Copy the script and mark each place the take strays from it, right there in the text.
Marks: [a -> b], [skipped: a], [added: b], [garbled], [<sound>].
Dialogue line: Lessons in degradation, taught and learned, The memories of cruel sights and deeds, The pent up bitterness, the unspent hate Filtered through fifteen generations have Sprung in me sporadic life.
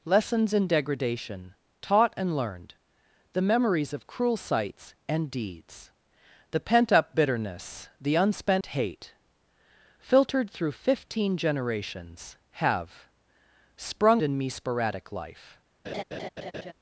Lessons in degradation, taught and learned, The memories of cruel sights and deeds, The pent up bitterness, the unspent [dropout] hate Filtered through fifteen generations have Sprung in me sporadic life. [laugh]